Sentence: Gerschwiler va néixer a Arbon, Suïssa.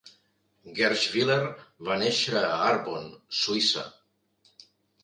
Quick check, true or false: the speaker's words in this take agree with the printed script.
true